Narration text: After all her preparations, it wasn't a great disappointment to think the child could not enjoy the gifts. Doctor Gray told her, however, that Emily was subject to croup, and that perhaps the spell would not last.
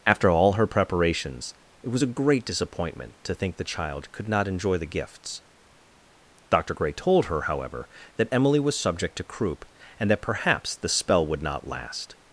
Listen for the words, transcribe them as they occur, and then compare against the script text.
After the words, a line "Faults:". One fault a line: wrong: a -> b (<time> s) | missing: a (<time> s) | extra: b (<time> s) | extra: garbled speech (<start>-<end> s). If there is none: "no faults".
After all her preparations, it was a great disappointment to think the child could not enjoy the gifts. Doctor Gray told her, however, that Emily was subject to croup, and that perhaps the spell would not last.
Faults:
wrong: wasn't -> was (1.9 s)